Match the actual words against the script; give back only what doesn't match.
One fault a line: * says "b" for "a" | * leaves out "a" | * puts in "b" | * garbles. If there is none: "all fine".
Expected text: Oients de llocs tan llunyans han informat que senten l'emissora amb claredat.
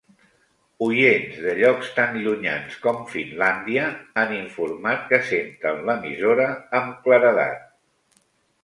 * puts in "com Finlàndia"